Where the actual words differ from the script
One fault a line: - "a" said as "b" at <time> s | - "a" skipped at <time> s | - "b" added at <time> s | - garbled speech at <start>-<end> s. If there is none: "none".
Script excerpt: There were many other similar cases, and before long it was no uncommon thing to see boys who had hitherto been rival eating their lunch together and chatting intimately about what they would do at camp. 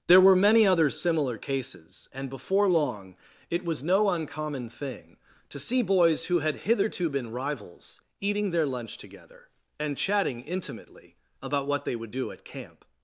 - "rival" said as "rivals" at 7.3 s